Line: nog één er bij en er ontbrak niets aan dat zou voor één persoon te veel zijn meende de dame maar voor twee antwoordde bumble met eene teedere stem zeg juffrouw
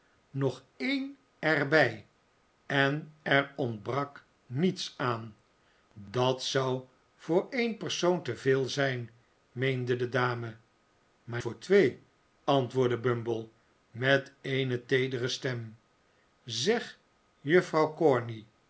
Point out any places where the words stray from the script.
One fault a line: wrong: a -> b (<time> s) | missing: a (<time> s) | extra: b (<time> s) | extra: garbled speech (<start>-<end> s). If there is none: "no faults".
no faults